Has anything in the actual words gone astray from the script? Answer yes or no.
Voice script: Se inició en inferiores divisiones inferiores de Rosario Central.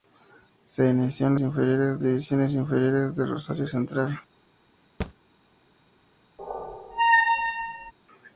no